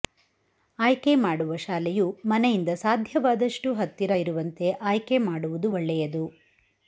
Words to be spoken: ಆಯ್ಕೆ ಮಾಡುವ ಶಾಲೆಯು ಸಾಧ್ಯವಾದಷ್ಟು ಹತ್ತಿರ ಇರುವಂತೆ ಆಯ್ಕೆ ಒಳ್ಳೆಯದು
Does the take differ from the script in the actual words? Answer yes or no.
yes